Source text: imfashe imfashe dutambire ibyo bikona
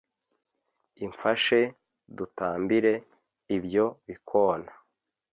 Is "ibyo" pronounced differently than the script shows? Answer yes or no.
no